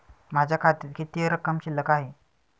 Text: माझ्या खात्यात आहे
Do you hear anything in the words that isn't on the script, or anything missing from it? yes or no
yes